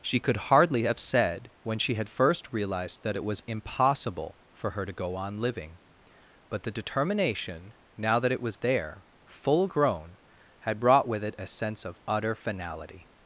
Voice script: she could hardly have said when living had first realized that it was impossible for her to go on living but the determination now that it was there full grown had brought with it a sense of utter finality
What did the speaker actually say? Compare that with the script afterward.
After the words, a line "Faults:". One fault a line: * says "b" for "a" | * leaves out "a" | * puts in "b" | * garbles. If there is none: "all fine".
she could hardly have said when she had first realized that it was impossible for her to go on living but the determination now that it was there full grown had brought with it a sense of utter finality
Faults:
* says "she" for "living"